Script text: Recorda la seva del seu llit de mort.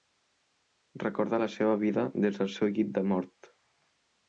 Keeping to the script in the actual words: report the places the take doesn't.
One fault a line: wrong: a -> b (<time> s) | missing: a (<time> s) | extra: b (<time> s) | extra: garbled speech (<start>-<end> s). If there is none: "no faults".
extra: vida des (1.8 s)